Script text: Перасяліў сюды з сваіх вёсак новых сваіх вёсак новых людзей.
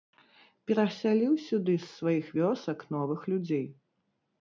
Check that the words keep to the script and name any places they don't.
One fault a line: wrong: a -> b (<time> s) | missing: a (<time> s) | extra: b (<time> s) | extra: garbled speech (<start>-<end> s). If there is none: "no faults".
missing: сваіх вёсак новых (3.3 s)